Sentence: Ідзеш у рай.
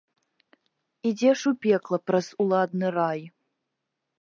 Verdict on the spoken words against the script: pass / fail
fail